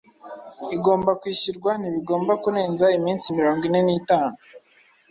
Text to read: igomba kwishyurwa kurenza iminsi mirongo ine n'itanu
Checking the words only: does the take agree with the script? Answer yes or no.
no